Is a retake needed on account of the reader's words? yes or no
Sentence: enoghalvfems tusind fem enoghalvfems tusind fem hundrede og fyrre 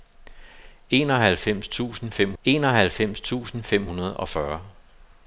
no